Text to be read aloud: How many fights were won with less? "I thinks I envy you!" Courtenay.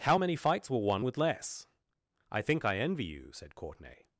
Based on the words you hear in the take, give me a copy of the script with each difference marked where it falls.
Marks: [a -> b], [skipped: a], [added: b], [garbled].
How many fights were won with less? "I [thinks -> think] I envy you!" [added: said] Courtenay.